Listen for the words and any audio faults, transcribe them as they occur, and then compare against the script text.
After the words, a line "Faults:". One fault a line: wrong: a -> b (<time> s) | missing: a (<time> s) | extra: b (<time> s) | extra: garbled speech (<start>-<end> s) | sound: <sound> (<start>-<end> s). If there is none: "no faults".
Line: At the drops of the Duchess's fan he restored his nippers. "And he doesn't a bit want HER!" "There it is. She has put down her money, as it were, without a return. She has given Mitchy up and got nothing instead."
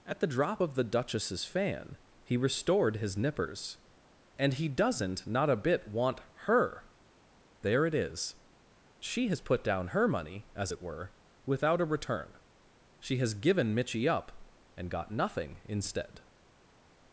At the drop of the Duchess's fan he restored his nippers. "And he doesn't not a bit want HER!" "There it is. She has put down her money, as it were, without a return. She has given Mitchy up and got nothing instead."
Faults:
wrong: drops -> drop (0.3 s)
extra: not (5.3 s)